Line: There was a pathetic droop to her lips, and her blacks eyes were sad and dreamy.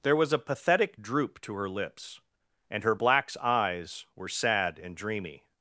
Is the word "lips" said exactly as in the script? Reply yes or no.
yes